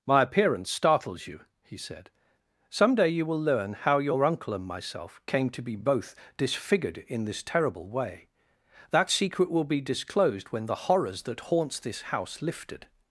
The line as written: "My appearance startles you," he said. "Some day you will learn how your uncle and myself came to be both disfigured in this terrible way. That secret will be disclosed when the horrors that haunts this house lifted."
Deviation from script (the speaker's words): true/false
false